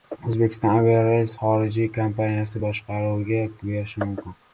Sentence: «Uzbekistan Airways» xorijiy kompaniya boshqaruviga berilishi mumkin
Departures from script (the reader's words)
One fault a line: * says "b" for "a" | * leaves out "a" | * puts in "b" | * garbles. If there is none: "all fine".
all fine